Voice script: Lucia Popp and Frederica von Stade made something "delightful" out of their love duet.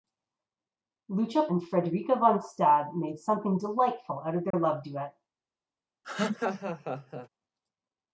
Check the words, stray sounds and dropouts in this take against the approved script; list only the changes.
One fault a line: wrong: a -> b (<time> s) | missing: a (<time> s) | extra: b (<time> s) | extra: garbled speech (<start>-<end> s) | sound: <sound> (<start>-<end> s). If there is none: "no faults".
missing: Popp (1.5 s)
sound: dropout (4.5-4.5 s)
sound: laugh (6.0-7.3 s)